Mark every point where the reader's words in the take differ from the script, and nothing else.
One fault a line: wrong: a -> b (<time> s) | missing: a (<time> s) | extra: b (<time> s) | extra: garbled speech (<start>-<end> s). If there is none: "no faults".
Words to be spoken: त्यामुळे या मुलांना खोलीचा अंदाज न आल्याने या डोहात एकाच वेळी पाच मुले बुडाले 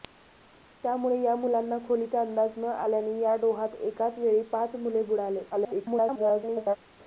extra: garbled speech (5.5-6.8 s)